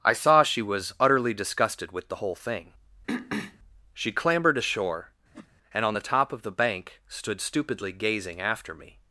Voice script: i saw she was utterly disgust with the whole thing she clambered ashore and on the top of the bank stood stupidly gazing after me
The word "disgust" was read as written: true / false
false